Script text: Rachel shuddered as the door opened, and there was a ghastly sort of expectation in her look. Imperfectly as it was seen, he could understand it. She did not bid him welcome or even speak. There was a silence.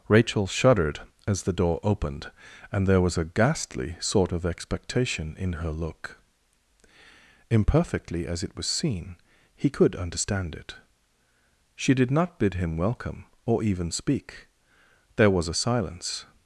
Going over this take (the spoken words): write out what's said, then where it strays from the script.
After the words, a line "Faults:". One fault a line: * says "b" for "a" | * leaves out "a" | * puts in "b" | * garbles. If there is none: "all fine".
Rachel shuddered as the door opened, and there was a ghastly sort of expectation in her look. Imperfectly as it was seen, he could understand it. She did not bid him welcome or even speak. There was a silence.
Faults:
all fine